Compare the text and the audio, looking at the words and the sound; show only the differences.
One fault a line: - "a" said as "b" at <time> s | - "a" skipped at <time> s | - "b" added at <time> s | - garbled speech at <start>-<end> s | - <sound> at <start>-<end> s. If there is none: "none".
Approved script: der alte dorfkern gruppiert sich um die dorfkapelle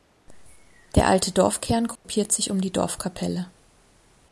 - dropout at 2.0-2.0 s